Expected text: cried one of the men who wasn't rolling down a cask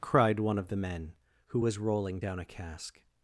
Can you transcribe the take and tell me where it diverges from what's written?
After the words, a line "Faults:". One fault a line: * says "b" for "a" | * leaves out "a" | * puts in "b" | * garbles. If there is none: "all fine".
cried one of the men who was rolling down a cask
Faults:
* says "was" for "wasn't"